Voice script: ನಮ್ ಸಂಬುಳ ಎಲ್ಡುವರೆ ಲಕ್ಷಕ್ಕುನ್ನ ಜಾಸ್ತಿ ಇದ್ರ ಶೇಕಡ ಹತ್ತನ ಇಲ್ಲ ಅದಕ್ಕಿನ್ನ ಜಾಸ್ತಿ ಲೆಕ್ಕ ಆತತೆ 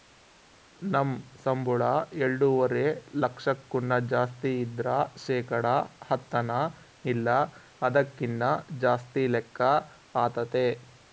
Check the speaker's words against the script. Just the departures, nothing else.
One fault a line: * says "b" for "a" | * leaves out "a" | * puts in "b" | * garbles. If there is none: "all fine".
all fine